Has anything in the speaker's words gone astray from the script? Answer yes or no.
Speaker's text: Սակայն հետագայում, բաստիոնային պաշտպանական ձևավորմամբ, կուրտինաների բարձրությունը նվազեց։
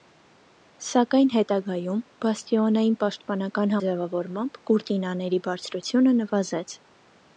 no